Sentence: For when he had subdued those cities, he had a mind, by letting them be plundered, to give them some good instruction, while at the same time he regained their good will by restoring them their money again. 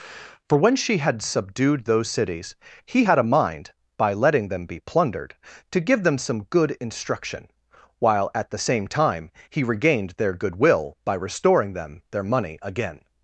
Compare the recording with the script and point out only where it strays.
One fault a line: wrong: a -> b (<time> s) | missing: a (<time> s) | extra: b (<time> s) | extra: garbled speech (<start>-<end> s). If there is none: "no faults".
wrong: he -> she (0.8 s)